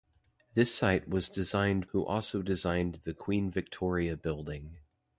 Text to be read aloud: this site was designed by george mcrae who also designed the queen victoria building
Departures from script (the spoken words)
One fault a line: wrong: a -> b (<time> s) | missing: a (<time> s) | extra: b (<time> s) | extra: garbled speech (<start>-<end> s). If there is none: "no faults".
missing: by george mcrae (1.9 s)